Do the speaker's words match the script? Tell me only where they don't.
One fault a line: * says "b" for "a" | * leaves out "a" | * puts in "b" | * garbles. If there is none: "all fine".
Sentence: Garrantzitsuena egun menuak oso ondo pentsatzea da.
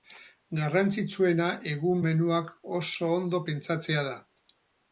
all fine